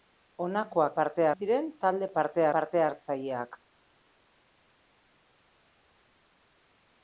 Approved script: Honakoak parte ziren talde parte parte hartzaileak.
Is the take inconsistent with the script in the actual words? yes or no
no